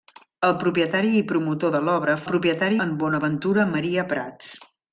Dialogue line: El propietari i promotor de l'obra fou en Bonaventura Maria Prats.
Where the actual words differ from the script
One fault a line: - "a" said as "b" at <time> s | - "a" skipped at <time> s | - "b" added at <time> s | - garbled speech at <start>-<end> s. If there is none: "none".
- "fou" said as "propietari" at 2.3 s